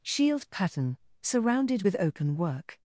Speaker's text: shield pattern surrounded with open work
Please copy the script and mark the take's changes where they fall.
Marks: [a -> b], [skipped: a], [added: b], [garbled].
shield pattern surrounded with open work